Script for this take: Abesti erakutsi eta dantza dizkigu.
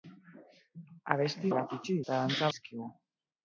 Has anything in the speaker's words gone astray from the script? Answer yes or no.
no